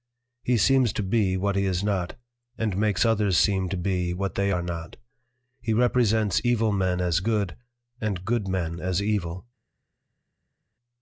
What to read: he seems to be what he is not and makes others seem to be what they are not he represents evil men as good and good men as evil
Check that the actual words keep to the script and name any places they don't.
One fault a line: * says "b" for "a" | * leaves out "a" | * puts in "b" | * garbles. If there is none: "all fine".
all fine